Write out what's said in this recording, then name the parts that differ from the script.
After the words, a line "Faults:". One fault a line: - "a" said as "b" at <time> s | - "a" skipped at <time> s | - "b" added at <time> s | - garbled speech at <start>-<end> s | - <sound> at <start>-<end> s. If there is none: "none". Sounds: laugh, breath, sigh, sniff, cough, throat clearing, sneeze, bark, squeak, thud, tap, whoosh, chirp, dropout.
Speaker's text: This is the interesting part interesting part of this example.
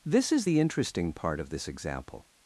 This is the interesting part of this example.
Faults:
- "interesting part" skipped at 1.4 s